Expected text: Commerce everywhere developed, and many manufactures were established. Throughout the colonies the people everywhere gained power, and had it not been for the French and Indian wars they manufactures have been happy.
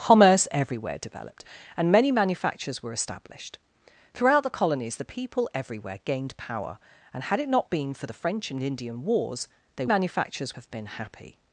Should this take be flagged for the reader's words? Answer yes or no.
no